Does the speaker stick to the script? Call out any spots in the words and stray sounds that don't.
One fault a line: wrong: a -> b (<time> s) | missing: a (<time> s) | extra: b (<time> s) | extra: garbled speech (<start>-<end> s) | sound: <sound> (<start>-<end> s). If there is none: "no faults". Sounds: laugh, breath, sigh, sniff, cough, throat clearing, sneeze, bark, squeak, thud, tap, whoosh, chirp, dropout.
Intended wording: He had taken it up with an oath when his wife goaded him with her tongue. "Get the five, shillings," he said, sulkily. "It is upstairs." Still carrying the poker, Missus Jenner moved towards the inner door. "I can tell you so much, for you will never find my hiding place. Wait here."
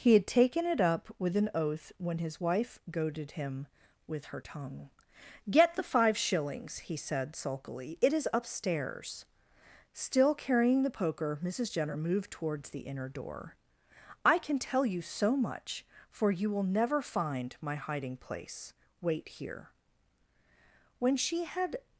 extra: When she had (21.0 s)